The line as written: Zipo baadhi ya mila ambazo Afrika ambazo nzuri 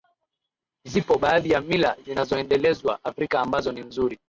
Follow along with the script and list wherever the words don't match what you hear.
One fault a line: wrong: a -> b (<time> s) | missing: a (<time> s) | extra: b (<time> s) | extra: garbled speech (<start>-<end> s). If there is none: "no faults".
wrong: ambazo -> zinazoendelezwa (2.0 s)
extra: ni (3.7 s)